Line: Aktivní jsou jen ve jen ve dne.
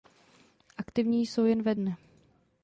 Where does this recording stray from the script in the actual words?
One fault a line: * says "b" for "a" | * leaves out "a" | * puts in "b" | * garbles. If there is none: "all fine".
* leaves out "jen ve"